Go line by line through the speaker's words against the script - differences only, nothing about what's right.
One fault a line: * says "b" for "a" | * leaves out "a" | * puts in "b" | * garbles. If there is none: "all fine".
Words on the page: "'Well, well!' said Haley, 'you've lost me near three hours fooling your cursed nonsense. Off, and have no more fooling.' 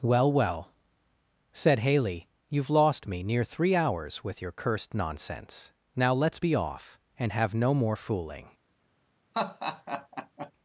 * says "with" for "fooling"
* puts in "Now let's be"